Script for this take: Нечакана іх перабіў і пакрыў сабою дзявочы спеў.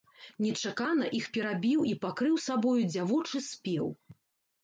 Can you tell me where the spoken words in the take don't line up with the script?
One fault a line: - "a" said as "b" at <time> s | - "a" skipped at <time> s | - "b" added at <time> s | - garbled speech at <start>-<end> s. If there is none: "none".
none